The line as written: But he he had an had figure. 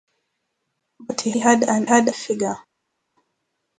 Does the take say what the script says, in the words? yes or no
yes